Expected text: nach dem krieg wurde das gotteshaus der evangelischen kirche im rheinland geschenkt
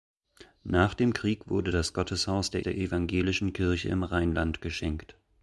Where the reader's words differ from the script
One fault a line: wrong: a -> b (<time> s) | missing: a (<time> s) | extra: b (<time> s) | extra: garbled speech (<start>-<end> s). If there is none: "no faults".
extra: der (2.6 s)